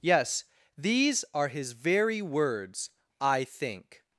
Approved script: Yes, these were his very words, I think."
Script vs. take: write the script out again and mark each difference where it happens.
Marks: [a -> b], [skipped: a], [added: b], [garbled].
Yes, these [were -> are] his very words, I think."